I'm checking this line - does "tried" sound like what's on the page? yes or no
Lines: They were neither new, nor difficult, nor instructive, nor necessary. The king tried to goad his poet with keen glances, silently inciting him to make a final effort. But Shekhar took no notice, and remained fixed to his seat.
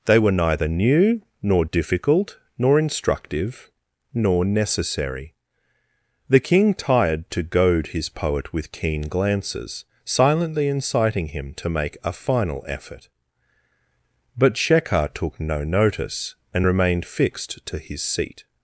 no